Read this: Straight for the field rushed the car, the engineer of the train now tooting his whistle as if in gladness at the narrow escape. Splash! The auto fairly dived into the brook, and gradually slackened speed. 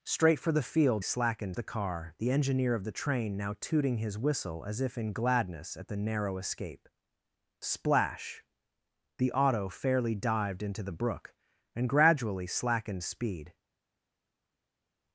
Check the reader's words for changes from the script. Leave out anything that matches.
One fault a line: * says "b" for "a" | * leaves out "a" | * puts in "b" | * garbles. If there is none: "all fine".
* says "slackened" for "rushed"